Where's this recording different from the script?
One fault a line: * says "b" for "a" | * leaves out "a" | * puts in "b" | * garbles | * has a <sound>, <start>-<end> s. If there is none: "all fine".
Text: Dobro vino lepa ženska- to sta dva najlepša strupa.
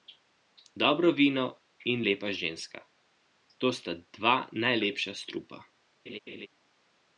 * puts in "in"
* has a laugh, 6.1-6.5 s